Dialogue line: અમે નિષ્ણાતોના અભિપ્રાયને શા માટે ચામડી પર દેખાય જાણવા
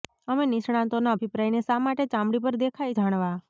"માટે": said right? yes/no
yes